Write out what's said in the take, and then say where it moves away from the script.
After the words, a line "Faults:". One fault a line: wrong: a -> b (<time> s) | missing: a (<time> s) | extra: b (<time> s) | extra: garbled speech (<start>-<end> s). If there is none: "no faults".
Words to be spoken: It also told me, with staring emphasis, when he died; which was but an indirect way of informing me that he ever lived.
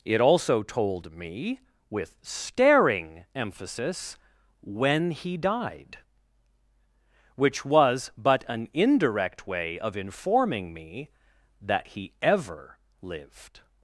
It also told me, with staring emphasis, when he died; which was but an indirect way of informing me that he ever lived.
Faults:
no faults